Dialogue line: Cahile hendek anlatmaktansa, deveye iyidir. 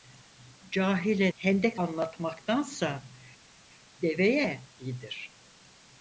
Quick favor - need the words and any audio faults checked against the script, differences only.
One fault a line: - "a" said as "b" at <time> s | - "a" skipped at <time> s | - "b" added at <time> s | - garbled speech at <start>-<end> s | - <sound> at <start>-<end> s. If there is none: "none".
none